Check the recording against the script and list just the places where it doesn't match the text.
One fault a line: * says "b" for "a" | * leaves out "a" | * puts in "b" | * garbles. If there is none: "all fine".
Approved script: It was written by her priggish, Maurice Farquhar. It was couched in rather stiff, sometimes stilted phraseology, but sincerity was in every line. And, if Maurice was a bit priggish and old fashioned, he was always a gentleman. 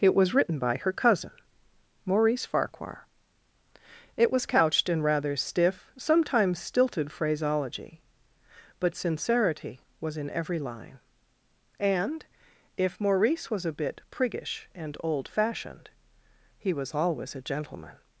* says "cousin" for "priggish"